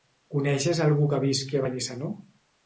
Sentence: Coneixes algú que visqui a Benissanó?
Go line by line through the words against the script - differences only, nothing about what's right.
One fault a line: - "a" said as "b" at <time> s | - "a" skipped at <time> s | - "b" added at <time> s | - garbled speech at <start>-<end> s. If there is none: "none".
none